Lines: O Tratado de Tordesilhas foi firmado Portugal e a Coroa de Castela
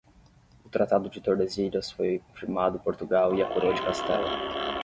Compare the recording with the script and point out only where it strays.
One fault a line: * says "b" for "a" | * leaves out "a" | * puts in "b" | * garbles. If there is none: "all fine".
all fine